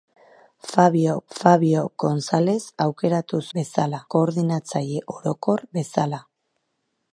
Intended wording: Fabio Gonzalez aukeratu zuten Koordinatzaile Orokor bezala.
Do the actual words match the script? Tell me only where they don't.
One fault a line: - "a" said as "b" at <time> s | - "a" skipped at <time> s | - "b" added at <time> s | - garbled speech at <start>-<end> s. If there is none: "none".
- "fabio" added at 1.4 s
- "zuten" said as "bezala" at 3.6 s